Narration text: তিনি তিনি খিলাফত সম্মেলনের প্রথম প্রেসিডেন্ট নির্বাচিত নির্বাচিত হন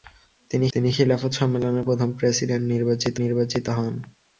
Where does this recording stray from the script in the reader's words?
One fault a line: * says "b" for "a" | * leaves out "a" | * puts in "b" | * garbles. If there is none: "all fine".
all fine